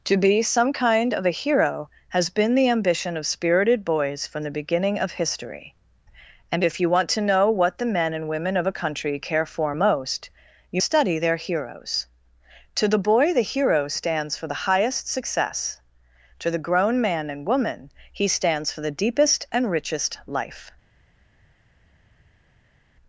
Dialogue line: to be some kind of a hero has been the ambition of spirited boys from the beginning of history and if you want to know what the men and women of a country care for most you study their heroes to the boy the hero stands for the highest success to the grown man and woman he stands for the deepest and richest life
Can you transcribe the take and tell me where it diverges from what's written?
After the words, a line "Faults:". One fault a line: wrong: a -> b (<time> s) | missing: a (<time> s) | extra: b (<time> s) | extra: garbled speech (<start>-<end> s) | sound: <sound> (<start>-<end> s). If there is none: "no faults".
to be some kind of a hero has been the ambition of spirited boys from the beginning of history and if you want to know what the men and women of a country care for most you study their heroes to the boy the hero stands for the highest success to the grown man and woman he stands for the deepest and richest life
Faults:
no faults